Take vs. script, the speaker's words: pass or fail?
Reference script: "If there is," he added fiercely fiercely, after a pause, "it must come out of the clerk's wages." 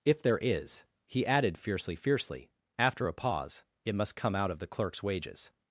pass